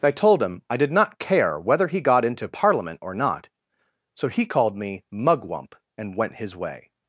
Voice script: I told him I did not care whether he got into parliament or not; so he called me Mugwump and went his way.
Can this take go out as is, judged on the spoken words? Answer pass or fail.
pass